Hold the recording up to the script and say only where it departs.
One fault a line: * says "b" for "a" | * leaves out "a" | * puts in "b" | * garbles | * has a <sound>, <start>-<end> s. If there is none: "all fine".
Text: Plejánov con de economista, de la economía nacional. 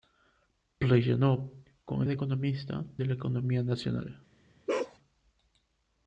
* has a bark, 4.7-5.0 s